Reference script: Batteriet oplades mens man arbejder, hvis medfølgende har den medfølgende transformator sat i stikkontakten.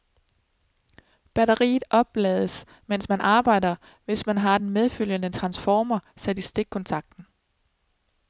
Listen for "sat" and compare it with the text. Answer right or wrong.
right